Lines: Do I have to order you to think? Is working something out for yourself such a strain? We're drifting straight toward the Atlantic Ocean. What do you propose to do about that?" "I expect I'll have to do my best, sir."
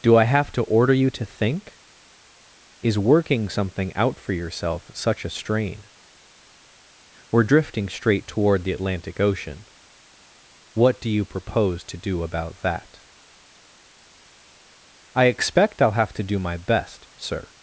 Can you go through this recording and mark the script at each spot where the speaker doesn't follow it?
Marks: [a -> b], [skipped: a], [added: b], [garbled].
Do I have to order you to think? Is working something out for yourself such a strain? We're drifting straight toward the Atlantic Ocean. What do you propose to do about that?" "I expect I'll have to do my best, sir."